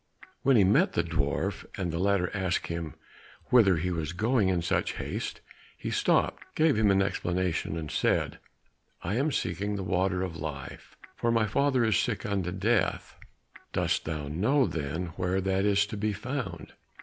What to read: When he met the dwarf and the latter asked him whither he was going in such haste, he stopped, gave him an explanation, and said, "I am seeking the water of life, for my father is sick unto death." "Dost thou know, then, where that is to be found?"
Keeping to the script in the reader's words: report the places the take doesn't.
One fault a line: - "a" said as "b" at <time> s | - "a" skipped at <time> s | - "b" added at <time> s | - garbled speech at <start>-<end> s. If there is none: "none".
none